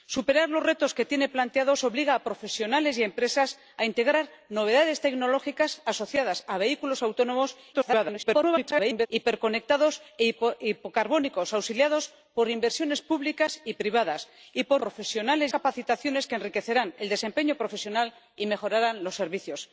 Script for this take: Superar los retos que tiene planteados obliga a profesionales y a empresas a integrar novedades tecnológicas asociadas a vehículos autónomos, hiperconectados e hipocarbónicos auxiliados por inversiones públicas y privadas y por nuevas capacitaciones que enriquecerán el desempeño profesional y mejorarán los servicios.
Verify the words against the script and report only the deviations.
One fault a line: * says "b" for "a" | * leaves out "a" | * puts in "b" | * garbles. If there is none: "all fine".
* garbles
* says "profesionales" for "nuevas"